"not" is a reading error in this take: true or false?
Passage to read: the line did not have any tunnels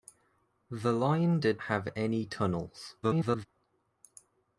true